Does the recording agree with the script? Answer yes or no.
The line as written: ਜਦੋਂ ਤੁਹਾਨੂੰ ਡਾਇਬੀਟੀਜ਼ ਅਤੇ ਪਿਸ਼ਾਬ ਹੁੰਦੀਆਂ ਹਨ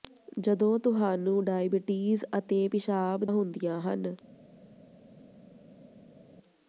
yes